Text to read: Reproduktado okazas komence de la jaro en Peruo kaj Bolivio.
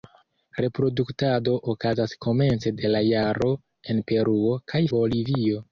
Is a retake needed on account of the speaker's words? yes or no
no